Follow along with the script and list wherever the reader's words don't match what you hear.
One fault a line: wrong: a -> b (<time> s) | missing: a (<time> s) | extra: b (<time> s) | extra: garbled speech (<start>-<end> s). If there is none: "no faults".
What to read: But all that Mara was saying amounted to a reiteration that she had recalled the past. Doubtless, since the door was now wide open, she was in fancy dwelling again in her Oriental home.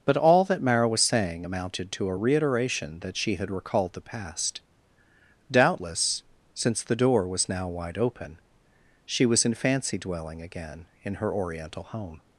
no faults